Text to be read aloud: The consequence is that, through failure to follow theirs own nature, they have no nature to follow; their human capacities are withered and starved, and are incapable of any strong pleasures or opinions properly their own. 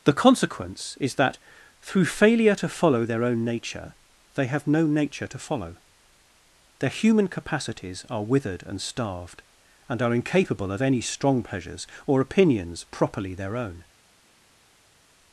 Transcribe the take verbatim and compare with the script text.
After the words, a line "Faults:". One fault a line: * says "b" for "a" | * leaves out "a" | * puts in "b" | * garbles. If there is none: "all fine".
The consequence is that, through failure to follow their own nature, they have no nature to follow; their human capacities are withered and starved, and are incapable of any strong pleasures or opinions properly their own.
Faults:
* says "their" for "theirs"